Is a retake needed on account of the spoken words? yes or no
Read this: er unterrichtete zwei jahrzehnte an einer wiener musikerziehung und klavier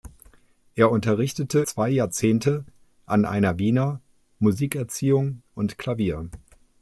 no